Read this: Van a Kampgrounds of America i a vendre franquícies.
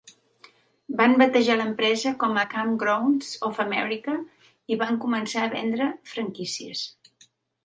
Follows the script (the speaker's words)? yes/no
no